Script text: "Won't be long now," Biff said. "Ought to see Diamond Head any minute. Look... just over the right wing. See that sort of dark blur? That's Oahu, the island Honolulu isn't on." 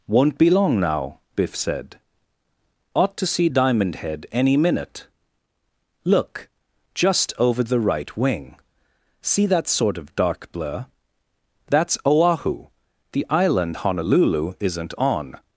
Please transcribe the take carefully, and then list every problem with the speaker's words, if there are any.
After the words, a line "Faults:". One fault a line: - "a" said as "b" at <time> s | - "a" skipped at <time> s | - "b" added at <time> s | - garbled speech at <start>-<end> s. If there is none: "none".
"Won't be long now," Biff said. "Ought to see Diamond Head any minute. Look... just over the right wing. See that sort of dark blur? That's Oahu, the island Honolulu isn't on."
Faults:
none